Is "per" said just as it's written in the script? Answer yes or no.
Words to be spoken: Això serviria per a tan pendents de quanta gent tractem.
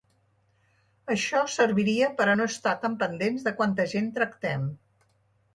yes